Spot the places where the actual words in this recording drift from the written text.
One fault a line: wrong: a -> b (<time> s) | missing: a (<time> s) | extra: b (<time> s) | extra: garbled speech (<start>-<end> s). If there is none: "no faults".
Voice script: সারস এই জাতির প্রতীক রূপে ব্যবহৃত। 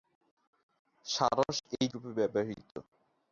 missing: জাতির প্রতীক (1.9 s)